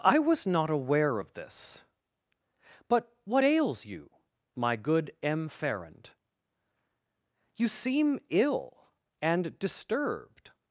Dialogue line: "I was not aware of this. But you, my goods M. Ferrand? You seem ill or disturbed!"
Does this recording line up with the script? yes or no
no